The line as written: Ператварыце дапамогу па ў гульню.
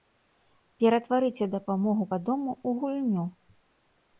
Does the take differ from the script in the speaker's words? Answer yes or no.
yes